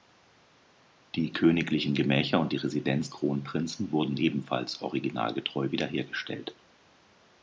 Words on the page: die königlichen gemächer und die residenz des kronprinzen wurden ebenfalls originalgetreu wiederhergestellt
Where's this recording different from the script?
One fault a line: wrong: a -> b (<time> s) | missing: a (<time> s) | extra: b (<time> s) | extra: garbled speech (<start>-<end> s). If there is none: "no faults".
missing: des (3.1 s)